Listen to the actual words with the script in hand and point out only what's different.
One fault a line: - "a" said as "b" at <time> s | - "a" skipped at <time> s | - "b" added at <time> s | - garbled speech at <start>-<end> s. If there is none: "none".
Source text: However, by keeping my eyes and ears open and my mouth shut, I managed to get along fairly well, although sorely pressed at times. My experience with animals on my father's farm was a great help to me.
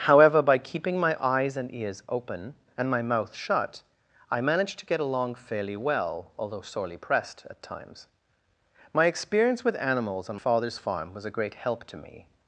- "my" skipped at 10.3 s